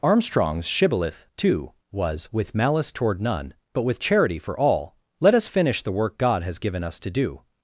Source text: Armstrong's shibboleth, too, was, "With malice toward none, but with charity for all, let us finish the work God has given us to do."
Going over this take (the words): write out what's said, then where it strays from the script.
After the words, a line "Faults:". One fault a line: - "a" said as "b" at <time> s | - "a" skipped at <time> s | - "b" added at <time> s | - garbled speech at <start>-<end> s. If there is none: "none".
Armstrong's shibboleth, too, was, "With malice toward none, but with charity for all, let us finish the work God has given us to do."
Faults:
none